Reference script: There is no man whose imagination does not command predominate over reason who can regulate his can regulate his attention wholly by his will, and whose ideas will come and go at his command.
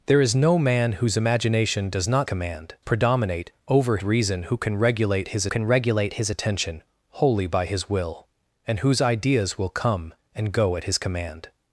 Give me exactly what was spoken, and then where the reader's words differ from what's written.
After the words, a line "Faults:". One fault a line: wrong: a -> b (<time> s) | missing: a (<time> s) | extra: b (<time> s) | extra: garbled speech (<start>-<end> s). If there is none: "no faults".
There is no man whose imagination does not command predominate over reason who can regulate his can regulate his attention wholly by his will, and whose ideas will come and go at his command.
Faults:
no faults